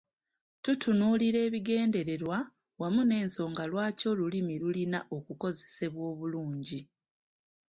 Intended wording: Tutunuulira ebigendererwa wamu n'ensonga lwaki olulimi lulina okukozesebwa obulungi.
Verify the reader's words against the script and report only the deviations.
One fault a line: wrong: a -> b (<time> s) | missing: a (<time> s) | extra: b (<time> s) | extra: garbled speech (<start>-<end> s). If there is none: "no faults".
no faults